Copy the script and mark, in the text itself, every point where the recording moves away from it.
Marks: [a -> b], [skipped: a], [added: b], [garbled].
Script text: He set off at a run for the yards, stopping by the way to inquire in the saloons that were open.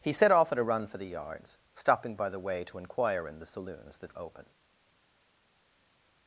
He set off at a run for the yards, stopping by the way to inquire in the saloons that [skipped: were] open.